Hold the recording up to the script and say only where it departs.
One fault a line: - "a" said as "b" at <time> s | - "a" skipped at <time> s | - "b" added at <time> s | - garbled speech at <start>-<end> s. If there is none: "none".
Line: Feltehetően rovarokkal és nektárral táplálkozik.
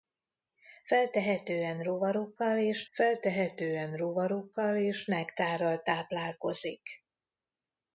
- "feltehetően rovarokkal és" added at 2.9 s